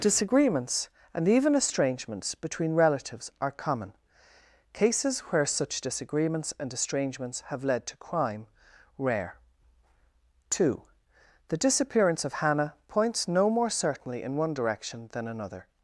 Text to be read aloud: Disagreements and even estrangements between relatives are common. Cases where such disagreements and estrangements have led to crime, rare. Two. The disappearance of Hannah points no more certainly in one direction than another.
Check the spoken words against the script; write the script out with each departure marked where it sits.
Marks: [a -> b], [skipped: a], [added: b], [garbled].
Disagreements and even estrangements between relatives are common. Cases where such disagreements and estrangements have led to crime, rare. Two. The disappearance of Hannah points no more certainly in one direction than another.